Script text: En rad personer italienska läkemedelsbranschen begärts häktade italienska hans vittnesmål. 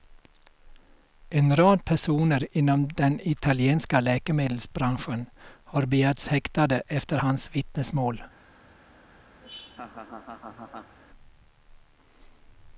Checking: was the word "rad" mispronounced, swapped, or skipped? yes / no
no